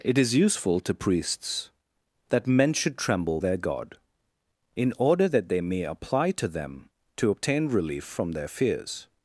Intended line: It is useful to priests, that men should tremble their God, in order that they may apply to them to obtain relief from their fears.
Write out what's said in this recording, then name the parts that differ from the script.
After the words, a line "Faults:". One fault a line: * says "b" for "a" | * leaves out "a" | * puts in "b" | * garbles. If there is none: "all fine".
It is useful to priests, that men should tremble their God, in order that they may apply to them to obtain relief from their fears.
Faults:
all fine